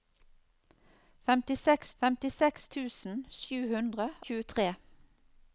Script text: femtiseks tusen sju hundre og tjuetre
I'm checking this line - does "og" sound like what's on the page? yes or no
no